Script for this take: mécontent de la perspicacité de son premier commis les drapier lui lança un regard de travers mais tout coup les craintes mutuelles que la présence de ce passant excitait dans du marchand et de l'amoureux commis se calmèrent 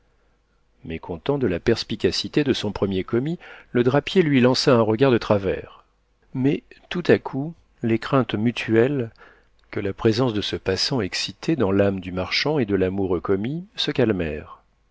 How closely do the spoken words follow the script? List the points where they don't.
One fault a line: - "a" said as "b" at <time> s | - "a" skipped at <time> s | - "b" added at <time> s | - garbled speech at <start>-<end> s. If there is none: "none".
- "les" said as "le" at 3.7 s
- "à" added at 7.1 s
- "l'âme" added at 11.7 s